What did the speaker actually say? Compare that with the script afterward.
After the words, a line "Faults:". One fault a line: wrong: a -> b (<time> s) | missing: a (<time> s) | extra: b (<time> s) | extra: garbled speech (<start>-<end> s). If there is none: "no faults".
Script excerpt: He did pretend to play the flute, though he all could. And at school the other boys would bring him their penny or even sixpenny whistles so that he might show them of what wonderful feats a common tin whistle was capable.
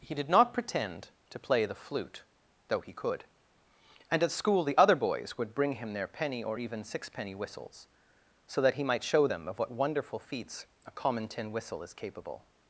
He did not pretend to play the flute, though he could. And at school the other boys would bring him their penny or even sixpenny whistles so that he might show them of what wonderful feats a common tin whistle is capable.
Faults:
extra: not (0.3 s)
missing: all (2.9 s)
wrong: was -> is (11.8 s)